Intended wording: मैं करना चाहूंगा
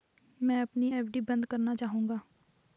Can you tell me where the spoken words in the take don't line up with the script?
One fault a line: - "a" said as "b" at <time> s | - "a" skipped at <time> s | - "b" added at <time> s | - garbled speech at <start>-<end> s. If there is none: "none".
- "अपनी एफ.डी बंद" added at 0.6 s